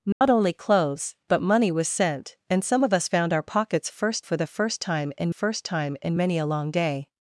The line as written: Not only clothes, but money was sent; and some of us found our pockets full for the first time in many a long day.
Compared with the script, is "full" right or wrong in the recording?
wrong